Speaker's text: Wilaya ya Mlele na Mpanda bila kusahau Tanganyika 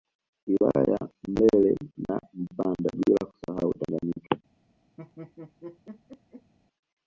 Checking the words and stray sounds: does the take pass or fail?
fail